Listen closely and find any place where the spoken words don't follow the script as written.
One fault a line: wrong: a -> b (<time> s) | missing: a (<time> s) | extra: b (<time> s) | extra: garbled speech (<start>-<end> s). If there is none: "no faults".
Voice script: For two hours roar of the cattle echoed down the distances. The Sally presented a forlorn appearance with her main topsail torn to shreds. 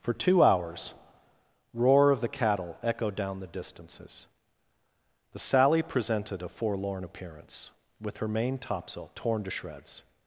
no faults